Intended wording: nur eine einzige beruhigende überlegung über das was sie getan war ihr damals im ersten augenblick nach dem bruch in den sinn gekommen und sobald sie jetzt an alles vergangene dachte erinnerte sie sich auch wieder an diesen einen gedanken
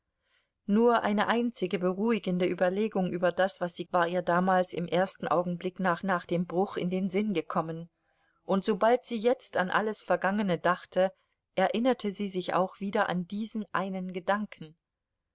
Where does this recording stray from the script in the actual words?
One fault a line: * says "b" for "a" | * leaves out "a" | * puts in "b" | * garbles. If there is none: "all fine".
* leaves out "getan"
* puts in "nach"